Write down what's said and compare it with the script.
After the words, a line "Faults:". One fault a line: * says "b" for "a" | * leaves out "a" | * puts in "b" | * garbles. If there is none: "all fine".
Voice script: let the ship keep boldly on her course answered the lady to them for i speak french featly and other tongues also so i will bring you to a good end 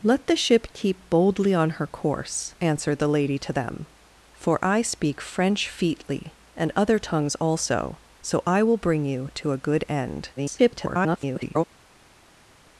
let the ship keep boldly on her course answered the lady to them for i speak french featly and other tongues also so i will bring you to a good end [garbled]
Faults:
* garbles